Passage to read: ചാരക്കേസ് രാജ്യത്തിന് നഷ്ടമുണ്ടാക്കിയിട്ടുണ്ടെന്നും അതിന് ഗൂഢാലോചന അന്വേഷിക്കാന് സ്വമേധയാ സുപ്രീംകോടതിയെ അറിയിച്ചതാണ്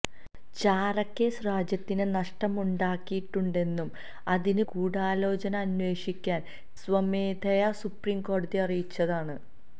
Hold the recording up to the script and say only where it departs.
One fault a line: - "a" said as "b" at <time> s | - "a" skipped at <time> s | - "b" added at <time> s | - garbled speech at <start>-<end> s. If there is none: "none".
none